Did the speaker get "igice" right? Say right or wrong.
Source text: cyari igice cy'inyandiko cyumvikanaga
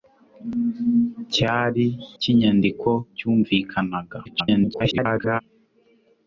wrong